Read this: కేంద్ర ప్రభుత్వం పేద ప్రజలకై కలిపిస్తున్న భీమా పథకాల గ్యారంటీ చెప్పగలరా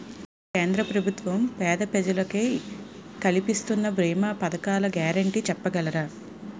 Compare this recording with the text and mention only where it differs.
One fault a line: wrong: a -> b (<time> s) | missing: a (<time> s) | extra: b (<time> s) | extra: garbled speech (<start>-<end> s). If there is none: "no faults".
no faults